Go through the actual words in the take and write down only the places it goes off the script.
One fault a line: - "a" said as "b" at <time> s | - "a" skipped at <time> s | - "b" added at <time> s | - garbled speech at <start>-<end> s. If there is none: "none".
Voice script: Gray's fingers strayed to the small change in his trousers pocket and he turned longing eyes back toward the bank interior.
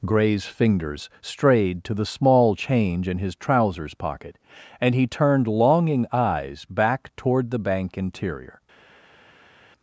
none